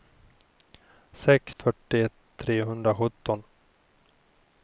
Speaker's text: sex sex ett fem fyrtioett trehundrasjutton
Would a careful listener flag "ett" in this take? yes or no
yes